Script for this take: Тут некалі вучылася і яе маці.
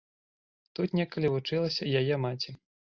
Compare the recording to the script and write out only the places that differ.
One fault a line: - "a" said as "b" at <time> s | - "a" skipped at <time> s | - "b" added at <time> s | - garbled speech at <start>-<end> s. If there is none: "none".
none